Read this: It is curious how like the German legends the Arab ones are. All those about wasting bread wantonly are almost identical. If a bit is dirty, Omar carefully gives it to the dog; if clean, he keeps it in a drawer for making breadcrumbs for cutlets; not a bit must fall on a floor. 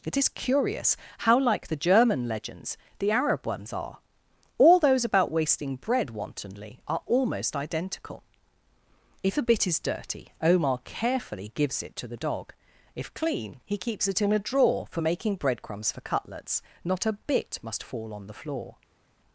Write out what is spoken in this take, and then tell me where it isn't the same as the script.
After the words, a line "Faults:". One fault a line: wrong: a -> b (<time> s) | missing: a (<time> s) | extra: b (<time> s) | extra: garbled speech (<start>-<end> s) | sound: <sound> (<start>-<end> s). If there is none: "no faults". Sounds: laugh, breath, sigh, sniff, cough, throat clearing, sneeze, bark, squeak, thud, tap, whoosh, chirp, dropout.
It is curious how like the German legends the Arab ones are. All those about wasting bread wantonly are almost identical. If a bit is dirty, Omar carefully gives it to the dog; if clean, he keeps it in a drawer for making breadcrumbs for cutlets; not a bit must fall on the floor.
Faults:
wrong: a -> the (18.3 s)